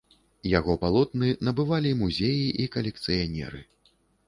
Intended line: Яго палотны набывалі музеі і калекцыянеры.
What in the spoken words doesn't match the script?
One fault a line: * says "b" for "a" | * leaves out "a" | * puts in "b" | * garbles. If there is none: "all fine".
all fine